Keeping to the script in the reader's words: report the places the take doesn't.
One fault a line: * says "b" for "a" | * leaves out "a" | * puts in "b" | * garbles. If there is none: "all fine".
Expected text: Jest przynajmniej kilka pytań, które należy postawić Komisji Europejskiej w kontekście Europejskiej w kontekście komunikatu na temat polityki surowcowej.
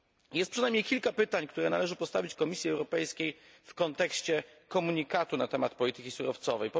* leaves out "Europejskiej w kontekście"